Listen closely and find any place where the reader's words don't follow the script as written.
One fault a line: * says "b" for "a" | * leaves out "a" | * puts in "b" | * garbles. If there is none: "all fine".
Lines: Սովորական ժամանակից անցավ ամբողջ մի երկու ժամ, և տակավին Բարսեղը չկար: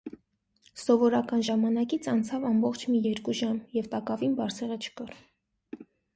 all fine